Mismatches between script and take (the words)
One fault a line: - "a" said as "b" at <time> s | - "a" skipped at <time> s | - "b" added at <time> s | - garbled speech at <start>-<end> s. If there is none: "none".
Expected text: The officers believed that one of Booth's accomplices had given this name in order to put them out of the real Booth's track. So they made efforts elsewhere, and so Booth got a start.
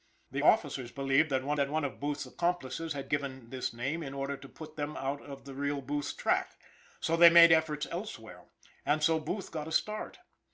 - "that one" added at 1.6 s